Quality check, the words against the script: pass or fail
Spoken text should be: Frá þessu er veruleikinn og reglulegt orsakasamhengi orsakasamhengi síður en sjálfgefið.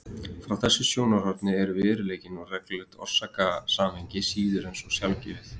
fail